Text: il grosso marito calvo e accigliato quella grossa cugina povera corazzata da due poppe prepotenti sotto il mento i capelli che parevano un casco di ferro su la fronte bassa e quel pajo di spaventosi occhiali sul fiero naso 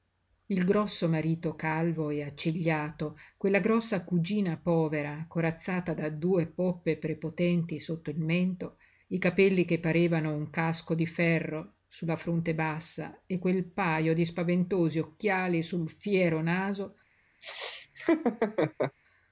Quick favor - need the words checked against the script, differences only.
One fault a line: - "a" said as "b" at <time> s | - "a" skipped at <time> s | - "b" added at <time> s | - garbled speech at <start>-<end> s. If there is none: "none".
none